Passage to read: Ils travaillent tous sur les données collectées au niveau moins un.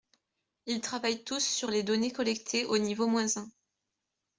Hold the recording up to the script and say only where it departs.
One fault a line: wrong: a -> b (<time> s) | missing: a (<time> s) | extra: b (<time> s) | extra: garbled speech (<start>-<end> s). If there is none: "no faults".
no faults